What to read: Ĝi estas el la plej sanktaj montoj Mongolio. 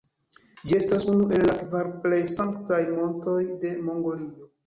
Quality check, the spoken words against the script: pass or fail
fail